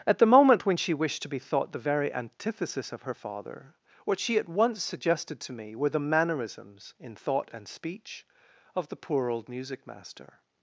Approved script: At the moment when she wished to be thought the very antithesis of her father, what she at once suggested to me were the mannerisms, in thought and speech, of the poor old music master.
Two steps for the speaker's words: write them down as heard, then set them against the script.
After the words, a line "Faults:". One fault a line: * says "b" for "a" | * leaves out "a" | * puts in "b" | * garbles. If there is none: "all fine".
At the moment when she wished to be thought the very antithesis of her father, what she at once suggested to me were the mannerisms, in thought and speech, of the poor old music master.
Faults:
all fine